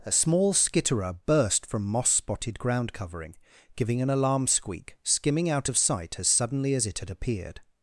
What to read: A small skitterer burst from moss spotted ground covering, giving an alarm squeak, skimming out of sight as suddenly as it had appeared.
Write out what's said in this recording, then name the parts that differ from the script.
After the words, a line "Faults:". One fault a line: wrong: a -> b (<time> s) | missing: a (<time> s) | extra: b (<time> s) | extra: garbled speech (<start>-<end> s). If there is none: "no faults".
A small skitterer burst from moss spotted ground covering, giving an alarm squeak, skimming out of sight as suddenly as it had appeared.
Faults:
no faults